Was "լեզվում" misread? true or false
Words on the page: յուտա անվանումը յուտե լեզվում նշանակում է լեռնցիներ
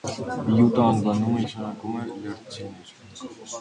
true